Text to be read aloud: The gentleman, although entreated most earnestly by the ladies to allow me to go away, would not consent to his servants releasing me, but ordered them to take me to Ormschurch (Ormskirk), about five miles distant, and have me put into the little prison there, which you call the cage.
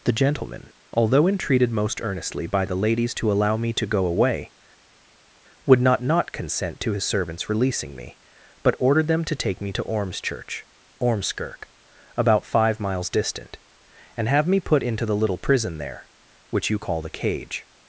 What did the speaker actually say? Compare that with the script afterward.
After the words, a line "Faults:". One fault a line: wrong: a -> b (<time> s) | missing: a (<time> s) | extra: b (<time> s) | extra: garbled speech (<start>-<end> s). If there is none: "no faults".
The gentleman, although entreated most earnestly by the ladies to allow me to go away, would not not consent to his servants releasing me, but ordered them to take me to Ormschurch (Ormskirk), about five miles distant, and have me put into the little prison there, which you call the cage.
Faults:
extra: not (6.0 s)